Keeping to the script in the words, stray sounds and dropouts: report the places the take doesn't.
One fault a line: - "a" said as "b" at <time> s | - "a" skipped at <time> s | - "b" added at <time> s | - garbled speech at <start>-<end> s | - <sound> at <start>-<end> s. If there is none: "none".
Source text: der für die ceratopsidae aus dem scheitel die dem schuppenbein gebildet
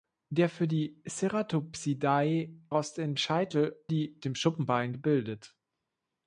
none